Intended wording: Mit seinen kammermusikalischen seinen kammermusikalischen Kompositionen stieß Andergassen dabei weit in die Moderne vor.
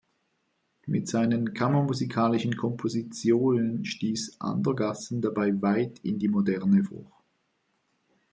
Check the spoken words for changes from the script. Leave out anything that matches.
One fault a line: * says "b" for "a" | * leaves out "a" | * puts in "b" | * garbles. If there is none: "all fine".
* leaves out "seinen kammermusikalischen"